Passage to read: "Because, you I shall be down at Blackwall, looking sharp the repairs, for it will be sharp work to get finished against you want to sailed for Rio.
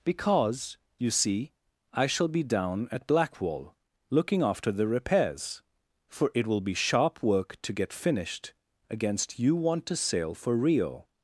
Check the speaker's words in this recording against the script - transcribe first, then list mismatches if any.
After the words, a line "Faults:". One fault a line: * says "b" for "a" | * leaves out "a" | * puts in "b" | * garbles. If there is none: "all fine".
"Because, you see, I shall be down at Blackwall, looking after the repairs, for it will be sharp work to get finished against you want to sail for Rio.
Faults:
* puts in "see"
* says "after" for "sharp"
* says "sail" for "sailed"